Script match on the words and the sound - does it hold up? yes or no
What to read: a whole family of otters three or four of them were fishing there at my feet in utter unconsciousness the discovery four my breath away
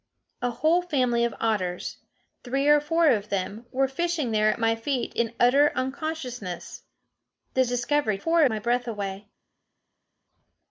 yes